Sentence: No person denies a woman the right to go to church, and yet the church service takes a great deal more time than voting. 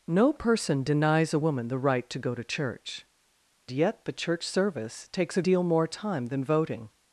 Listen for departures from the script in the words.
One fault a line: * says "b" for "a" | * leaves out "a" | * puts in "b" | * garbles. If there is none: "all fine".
* leaves out "and"
* leaves out "great"